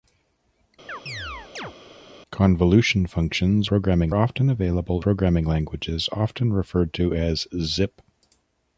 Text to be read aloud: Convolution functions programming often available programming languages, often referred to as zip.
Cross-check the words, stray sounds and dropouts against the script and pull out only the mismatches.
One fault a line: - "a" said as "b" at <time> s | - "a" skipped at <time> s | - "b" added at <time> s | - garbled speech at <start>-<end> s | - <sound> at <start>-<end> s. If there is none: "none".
- chirp at 0.9-1.7 s